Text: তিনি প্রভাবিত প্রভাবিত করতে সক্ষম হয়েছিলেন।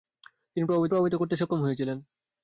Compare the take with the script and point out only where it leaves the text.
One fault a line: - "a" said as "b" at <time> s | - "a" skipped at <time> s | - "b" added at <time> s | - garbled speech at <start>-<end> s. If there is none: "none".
none